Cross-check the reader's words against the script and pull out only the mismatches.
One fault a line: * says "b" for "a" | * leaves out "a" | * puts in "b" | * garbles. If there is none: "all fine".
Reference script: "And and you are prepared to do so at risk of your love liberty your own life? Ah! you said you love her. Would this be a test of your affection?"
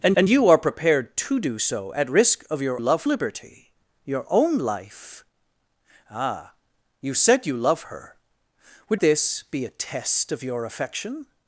all fine